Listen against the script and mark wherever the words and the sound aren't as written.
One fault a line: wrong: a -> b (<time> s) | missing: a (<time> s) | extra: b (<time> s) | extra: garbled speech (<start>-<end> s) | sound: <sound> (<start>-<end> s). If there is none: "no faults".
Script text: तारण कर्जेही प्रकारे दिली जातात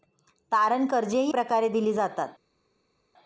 no faults